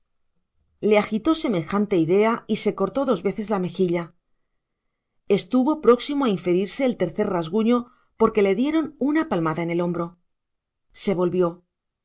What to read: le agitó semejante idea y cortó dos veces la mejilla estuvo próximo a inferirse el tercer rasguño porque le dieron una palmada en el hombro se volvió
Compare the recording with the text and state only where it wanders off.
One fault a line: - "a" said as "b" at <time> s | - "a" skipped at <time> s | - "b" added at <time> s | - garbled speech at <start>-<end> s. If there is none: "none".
- "se" added at 2.6 s